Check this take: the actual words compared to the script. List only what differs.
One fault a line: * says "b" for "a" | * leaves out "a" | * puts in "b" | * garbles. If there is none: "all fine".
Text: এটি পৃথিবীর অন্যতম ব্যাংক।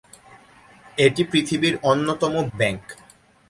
all fine